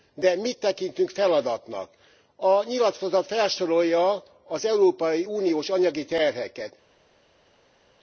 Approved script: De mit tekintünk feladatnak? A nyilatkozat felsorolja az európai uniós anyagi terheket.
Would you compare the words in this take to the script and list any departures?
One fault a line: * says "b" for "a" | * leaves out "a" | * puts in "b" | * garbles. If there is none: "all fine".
all fine